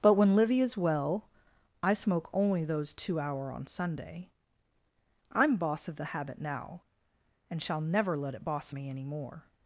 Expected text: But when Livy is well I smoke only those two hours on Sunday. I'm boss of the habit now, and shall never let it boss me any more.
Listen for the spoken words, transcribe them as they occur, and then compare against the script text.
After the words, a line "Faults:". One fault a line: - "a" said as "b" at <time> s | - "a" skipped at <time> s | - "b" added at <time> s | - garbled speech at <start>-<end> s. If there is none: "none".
But when Livy is well I smoke only those two hour on Sunday. I'm boss of the habit now, and shall never let it boss me any more.
Faults:
- "hours" said as "hour" at 3.2 s